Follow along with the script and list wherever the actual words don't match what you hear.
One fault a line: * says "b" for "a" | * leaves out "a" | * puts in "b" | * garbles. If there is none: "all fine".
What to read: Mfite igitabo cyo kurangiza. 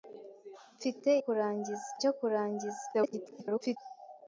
* says "kurangiza" for "igitabo"
* garbles